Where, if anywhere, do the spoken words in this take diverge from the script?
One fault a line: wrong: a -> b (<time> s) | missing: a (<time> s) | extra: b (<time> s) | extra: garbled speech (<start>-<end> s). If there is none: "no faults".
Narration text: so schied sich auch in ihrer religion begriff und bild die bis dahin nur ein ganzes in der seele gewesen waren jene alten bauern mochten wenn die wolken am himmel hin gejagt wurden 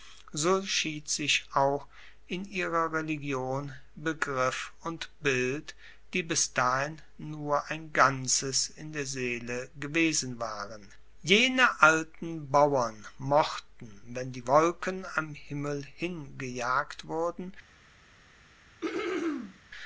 no faults